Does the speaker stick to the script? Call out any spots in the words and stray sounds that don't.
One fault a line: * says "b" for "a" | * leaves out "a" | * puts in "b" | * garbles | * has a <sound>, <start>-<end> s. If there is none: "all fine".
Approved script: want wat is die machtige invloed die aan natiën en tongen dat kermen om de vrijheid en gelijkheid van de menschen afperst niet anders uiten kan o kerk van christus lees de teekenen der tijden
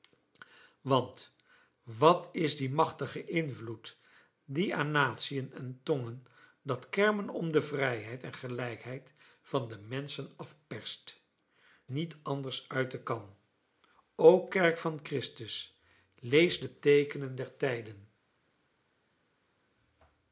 all fine